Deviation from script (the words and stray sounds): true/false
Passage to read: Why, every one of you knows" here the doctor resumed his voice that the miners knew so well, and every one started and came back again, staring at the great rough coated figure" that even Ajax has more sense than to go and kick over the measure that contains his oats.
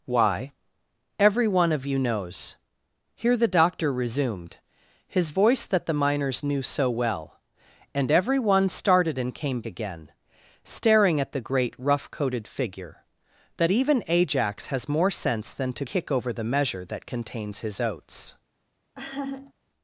true